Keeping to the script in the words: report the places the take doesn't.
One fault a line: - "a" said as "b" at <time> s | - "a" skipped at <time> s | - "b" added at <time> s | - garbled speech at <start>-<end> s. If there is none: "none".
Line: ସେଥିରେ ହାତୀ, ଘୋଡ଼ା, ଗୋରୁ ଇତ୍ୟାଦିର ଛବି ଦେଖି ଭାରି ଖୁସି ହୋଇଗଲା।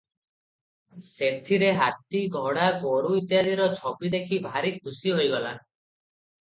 none